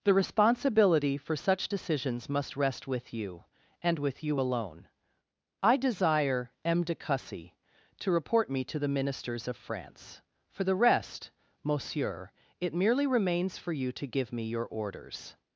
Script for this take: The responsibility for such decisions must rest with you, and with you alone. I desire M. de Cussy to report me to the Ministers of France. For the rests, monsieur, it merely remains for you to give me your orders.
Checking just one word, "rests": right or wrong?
wrong